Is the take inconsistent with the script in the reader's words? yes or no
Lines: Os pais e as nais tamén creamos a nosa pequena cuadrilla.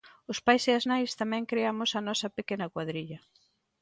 no